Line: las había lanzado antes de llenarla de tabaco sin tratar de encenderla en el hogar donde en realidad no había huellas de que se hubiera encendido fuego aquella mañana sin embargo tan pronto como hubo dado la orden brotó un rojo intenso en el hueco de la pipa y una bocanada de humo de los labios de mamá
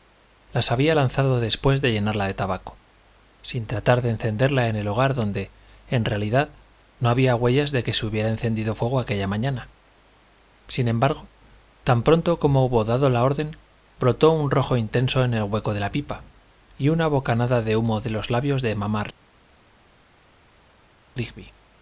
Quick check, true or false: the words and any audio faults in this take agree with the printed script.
false